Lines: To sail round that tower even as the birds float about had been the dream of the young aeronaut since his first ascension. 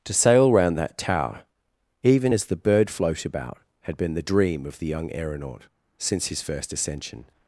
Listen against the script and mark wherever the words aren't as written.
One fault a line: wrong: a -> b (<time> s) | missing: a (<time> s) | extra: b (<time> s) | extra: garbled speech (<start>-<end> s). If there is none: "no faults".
wrong: birds -> bird (2.5 s)